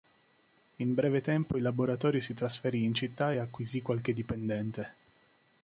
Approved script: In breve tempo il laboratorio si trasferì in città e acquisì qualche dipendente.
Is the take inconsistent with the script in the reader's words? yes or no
no